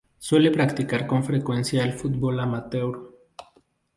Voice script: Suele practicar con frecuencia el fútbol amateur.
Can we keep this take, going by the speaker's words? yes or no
yes